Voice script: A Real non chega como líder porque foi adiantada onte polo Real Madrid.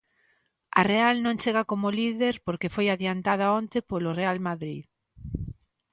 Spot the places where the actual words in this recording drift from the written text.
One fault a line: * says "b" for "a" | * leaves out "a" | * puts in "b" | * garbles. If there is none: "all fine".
all fine